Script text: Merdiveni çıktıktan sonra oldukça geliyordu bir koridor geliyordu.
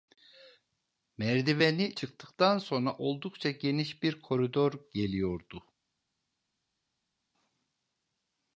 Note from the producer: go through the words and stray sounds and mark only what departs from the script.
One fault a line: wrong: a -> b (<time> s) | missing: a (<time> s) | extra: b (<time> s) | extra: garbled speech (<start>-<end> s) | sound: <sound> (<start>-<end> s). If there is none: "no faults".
wrong: geliyordu -> geniş (3.5 s)